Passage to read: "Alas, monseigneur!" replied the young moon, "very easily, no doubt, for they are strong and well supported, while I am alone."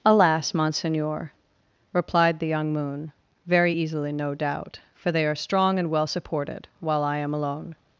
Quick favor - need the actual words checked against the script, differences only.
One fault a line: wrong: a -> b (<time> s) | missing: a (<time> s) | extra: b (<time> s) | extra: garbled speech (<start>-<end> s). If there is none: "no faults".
no faults